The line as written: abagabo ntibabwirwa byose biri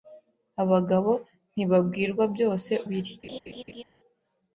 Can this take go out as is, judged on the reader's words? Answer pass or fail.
pass